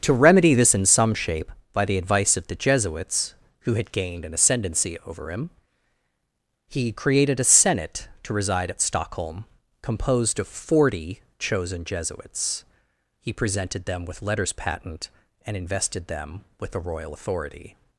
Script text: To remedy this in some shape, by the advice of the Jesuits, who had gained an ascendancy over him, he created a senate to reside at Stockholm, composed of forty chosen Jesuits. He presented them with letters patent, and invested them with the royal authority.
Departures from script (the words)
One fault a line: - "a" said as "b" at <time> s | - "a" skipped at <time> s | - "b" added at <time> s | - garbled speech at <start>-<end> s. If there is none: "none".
none